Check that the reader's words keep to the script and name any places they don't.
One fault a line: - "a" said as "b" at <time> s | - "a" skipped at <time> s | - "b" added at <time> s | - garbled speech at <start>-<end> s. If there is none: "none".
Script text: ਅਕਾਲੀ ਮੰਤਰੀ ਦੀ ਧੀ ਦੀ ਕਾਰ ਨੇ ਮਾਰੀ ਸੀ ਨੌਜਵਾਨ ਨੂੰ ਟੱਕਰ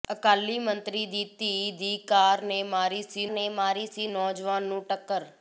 - "ਨੇ ਮਾਰੀ ਸੀ" added at 3.3 s